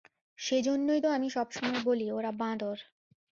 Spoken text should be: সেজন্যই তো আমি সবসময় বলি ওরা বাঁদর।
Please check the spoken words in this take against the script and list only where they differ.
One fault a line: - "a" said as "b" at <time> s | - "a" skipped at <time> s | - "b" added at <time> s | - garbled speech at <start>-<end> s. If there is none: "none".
none